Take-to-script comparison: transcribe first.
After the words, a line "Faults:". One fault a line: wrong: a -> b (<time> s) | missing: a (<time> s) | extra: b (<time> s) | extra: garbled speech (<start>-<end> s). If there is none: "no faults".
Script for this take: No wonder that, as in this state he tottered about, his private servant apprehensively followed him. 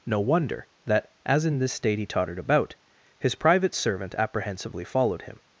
No wonder that, as in this state he tottered about, his private servant apprehensively followed him.
Faults:
no faults